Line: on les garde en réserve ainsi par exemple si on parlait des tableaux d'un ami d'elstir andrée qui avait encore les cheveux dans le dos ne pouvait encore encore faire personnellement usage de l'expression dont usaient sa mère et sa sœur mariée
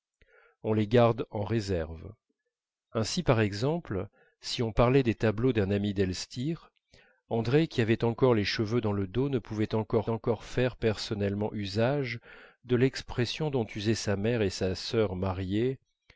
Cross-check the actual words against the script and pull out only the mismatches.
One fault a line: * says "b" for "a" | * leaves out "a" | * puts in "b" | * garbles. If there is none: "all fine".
all fine